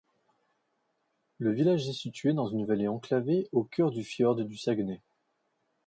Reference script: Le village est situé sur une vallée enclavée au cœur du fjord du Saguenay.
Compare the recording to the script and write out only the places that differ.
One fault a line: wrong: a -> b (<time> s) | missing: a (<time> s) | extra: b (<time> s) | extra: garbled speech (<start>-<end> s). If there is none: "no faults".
wrong: sur -> dans (2.3 s)